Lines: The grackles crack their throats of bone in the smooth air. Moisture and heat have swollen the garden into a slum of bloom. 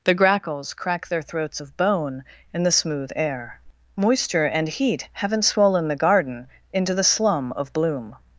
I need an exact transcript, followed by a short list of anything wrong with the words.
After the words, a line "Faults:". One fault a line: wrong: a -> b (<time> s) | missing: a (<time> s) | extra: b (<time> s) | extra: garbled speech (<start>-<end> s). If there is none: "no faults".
The grackles crack their throats of bone in the smooth air. Moisture and heat haven't swollen the garden into the slum of bloom.
Faults:
wrong: have -> haven't (5.1 s)
wrong: a -> the (6.9 s)